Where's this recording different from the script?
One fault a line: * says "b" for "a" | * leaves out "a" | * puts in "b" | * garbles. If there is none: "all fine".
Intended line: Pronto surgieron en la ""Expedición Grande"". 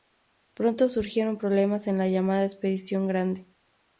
* puts in "problemas"
* puts in "llamada"